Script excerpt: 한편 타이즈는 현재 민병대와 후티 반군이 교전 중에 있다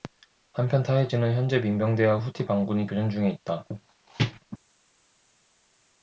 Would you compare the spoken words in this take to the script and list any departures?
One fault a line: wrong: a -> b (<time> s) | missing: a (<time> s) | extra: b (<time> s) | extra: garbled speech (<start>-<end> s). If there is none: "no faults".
no faults